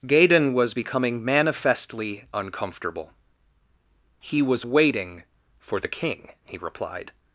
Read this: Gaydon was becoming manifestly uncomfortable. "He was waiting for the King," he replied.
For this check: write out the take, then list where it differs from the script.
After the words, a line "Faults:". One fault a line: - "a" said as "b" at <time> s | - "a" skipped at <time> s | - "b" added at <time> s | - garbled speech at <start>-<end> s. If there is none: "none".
Gaydon was becoming manifestly uncomfortable. "He was waiting for the King," he replied.
Faults:
none